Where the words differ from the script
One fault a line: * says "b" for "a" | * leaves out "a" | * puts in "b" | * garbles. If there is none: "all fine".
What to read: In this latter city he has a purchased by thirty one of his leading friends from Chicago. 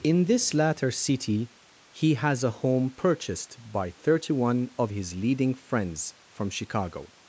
* puts in "home"